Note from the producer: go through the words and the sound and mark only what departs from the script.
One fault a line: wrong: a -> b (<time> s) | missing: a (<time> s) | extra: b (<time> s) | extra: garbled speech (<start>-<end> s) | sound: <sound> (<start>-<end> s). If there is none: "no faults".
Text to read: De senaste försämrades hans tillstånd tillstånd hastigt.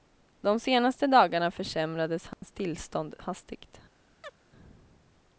extra: dagarna (1.1 s)
sound: dropout (2.3-2.4 s)
missing: tillstånd (3.1 s)
sound: chirp (4.2-4.4 s)